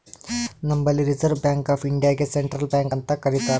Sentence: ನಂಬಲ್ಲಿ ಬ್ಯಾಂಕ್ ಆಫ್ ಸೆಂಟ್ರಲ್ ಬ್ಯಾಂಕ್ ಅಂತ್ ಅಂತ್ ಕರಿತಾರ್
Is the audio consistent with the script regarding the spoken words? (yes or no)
no